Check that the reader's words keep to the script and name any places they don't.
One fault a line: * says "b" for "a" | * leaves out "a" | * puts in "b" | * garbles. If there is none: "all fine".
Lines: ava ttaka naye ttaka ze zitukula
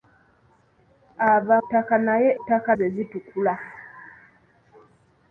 all fine